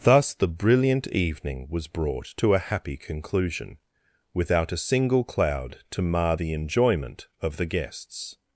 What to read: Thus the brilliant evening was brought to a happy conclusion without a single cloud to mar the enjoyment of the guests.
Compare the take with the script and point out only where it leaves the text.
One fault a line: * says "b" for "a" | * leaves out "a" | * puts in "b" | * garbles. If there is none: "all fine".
all fine